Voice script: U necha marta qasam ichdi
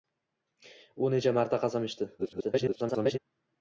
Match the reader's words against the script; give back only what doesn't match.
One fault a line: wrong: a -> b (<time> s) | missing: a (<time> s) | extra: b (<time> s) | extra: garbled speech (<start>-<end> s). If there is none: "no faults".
extra: garbled speech (2.2-3.2 s)